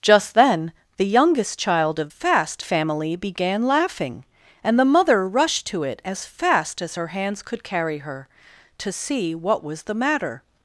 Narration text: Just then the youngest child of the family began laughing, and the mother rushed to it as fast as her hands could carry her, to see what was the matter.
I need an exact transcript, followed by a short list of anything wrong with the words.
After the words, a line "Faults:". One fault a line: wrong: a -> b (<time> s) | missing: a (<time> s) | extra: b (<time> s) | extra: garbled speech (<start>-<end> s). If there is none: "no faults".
Just then the youngest child of fast family began laughing, and the mother rushed to it as fast as her hands could carry her, to see what was the matter.
Faults:
wrong: the -> fast (2.1 s)